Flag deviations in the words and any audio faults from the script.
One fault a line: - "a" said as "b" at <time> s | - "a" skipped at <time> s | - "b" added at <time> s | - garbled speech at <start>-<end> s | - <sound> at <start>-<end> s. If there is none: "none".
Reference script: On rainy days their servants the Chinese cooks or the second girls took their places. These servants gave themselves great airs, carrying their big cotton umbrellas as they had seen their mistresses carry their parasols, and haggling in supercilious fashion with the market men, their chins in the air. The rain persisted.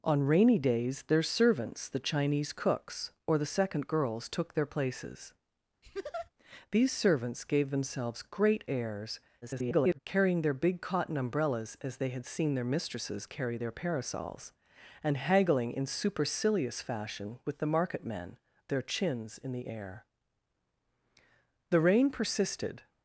- laugh at 5.8-6.3 s
- garbled speech at 9.4-10.0 s